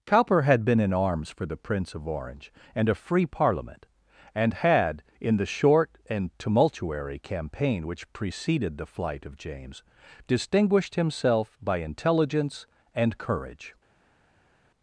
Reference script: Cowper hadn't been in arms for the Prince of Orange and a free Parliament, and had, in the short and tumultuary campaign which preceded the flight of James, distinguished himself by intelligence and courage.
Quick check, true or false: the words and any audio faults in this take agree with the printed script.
false